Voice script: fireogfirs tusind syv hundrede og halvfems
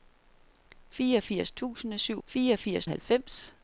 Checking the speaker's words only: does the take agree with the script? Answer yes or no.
no